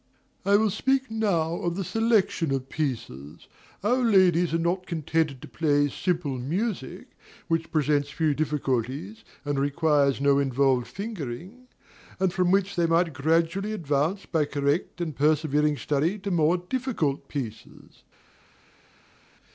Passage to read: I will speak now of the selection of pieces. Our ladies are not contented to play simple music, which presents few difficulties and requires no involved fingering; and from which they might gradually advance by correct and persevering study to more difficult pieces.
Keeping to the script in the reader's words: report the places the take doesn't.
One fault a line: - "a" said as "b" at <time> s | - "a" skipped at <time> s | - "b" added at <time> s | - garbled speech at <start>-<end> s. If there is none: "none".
none